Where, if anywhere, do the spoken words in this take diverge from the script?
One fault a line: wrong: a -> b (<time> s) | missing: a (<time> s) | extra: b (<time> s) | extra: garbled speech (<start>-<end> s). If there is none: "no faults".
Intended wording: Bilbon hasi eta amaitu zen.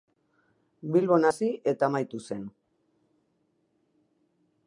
no faults